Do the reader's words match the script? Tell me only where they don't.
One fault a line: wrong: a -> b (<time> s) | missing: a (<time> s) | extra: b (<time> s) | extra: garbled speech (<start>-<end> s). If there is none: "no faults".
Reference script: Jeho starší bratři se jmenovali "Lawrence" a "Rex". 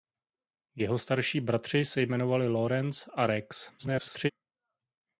extra: garbled speech (3.8-4.3 s)